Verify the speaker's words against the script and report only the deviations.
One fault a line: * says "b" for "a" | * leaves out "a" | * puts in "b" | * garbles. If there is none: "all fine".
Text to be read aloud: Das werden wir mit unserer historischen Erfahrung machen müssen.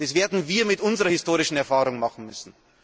all fine